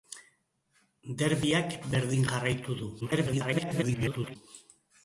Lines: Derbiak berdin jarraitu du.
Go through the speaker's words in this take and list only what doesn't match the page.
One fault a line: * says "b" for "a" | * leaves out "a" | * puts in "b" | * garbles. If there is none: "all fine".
* garbles